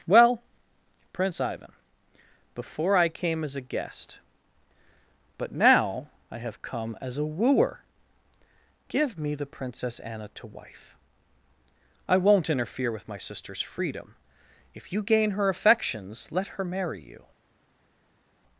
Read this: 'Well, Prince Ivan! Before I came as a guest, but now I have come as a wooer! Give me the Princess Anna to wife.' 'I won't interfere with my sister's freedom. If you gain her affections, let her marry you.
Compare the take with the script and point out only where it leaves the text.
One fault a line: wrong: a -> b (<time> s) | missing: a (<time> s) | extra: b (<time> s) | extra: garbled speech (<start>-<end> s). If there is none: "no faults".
no faults